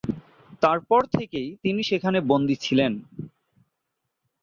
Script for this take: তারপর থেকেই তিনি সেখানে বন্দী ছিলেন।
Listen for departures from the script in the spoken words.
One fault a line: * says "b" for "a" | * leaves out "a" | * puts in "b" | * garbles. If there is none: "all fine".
all fine